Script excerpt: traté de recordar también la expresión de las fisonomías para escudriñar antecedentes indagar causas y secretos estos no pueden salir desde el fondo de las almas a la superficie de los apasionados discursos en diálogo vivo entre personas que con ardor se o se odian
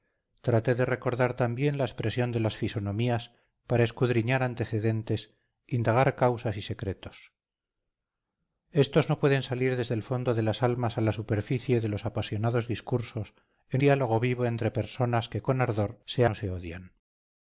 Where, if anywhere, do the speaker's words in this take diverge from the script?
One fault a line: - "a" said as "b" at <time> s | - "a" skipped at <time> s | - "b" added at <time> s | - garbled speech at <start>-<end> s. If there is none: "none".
none